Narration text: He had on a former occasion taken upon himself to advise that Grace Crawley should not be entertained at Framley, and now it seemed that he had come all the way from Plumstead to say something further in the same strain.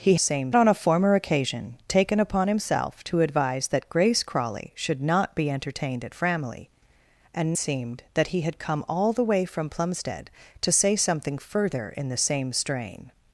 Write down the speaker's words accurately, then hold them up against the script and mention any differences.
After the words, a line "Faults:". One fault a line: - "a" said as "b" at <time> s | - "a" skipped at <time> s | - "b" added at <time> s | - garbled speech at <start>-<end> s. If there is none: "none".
He same on a former occasion taken upon himself to advise that Grace Crawley should not be entertained at Framley, and seemed that he had come all the way from Plumstead to say something further in the same strain.
Faults:
- "had" said as "same" at 0.2 s
- "now it" skipped at 7.5 s